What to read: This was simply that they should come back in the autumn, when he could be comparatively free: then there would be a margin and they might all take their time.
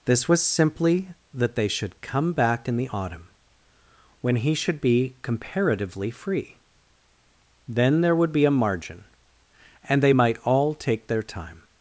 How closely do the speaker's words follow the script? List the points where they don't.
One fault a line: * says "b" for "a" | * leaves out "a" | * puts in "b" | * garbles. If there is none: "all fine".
* says "should" for "could"